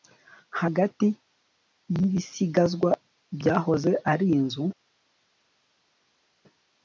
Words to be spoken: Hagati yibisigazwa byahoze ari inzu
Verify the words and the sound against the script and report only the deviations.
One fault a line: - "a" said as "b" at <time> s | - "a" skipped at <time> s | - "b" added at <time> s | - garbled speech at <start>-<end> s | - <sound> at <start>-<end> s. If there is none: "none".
none